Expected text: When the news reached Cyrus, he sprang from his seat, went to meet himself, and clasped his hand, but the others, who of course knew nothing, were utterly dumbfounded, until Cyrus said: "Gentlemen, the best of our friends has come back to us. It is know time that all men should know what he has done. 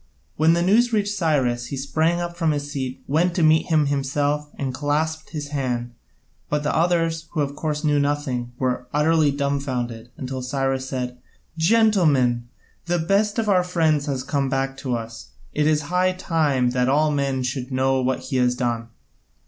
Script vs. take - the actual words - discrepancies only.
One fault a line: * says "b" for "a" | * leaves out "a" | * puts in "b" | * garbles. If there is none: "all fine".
* puts in "up"
* puts in "him"
* says "high" for "know"